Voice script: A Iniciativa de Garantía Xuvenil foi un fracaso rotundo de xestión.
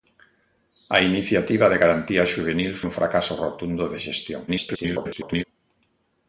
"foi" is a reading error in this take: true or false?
true